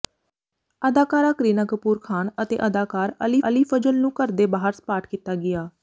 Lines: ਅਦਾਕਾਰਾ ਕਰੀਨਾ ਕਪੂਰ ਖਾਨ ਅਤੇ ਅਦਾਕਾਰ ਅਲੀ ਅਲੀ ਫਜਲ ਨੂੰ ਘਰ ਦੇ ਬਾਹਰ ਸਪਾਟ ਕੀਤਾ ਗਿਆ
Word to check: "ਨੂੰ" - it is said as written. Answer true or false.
true